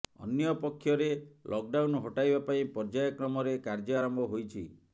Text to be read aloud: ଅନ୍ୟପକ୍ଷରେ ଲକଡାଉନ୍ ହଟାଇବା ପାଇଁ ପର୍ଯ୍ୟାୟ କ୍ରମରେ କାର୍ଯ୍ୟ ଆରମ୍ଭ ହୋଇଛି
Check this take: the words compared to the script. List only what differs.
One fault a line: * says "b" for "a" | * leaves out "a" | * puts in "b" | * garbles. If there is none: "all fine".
all fine